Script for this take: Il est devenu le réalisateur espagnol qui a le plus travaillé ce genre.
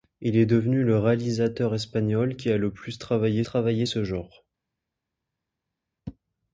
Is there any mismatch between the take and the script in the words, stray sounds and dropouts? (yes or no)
yes